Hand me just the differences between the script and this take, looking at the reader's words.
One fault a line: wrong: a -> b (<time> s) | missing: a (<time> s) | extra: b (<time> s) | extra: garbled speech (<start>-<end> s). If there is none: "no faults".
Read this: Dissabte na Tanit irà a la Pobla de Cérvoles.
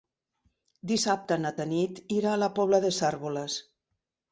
no faults